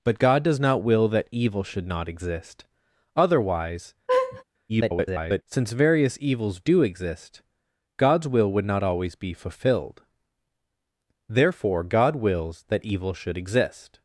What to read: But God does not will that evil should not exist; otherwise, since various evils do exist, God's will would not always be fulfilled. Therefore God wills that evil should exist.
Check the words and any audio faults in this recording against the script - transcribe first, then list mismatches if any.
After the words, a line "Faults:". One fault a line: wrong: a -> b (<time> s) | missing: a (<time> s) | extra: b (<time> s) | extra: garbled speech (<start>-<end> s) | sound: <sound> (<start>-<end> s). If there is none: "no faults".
But God does not will that evil should not exist; otherwise, [garbled] since various evils do exist, God's will would not always be fulfilled. Therefore God wills that evil should exist.
Faults:
sound: laugh (4.1-4.4 s)
extra: garbled speech (4.7-5.4 s)